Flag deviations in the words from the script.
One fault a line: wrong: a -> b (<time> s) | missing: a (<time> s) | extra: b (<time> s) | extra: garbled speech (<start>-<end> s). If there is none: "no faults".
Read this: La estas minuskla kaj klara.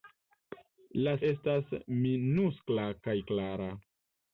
no faults